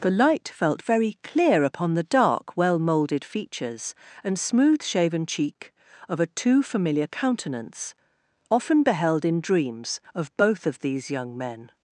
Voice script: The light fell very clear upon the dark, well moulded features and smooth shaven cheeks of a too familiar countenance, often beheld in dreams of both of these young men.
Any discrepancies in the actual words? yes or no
yes